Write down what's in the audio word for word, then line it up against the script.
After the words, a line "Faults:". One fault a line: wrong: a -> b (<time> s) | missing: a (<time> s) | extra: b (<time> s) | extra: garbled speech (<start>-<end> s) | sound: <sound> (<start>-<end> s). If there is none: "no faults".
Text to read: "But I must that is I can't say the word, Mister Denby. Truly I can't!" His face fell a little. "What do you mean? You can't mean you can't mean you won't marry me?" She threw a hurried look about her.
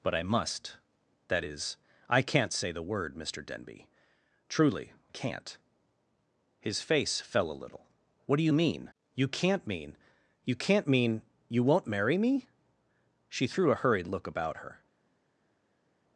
"But I must that is I can't say the word, Mister Denby. Truly can't!" His face fell a little. "What do you mean? You can't mean you can't mean you won't marry me?" She threw a hurried look about her.
Faults:
missing: I (4.9 s)